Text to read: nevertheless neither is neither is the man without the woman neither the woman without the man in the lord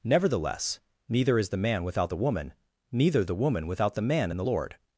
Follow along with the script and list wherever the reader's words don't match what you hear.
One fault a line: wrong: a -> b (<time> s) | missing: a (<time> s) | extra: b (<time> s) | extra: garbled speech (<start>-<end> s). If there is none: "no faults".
missing: neither is (1.5 s)